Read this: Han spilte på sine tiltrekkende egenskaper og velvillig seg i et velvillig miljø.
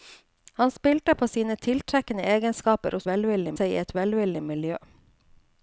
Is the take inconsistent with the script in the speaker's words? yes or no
no